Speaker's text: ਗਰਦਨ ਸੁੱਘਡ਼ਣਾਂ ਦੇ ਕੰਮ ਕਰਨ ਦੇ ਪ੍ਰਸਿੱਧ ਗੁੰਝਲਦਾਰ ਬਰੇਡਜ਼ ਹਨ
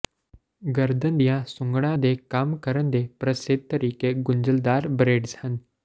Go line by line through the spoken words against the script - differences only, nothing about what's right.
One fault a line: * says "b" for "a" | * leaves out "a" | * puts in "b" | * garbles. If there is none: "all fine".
* puts in "ਦੀਆਂ"
* puts in "ਤਰੀਕੇ"